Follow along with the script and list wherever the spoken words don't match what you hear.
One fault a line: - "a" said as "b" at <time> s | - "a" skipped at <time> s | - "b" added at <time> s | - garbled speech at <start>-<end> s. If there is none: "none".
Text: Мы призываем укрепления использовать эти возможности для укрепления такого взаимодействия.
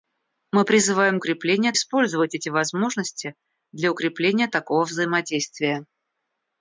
none